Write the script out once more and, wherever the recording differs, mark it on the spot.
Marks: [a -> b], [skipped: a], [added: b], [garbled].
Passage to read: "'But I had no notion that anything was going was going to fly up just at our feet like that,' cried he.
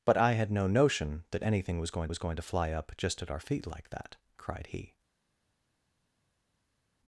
"'But I had no notion that anything was going was going to fly up just at our feet like that,' cried he.